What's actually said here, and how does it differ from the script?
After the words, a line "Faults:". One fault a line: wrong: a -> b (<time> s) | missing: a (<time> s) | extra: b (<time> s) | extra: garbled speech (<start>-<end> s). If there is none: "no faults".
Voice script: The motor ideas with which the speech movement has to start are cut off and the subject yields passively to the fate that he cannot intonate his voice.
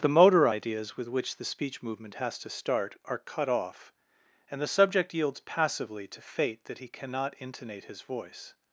The motor ideas with which the speech movement has to start are cut off and the subject yields passively to fate that he cannot intonate his voice.
Faults:
missing: the (6.2 s)